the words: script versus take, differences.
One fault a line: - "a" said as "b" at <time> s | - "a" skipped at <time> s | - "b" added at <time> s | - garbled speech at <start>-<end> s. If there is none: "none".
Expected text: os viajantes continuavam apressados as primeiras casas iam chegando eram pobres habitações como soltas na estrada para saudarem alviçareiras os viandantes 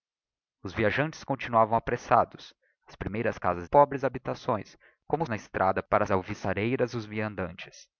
- "iam chegando eram" skipped at 3.7 s
- "soltas" skipped at 5.3 s
- "saudarem" skipped at 6.1 s